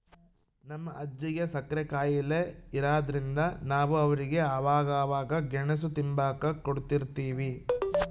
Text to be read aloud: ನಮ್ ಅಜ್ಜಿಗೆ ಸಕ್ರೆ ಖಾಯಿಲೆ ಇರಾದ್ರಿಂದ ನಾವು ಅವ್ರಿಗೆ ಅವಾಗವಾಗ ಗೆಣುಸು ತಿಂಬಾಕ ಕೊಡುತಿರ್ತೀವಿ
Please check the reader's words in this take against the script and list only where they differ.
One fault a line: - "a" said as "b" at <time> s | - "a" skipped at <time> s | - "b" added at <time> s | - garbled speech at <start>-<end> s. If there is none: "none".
none